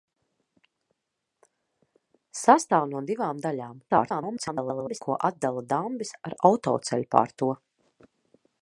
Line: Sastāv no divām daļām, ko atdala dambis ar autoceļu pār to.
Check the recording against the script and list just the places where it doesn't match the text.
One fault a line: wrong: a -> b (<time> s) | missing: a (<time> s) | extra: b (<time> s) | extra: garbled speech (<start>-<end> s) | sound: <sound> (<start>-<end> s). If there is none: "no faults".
extra: garbled speech (3.9-5.0 s)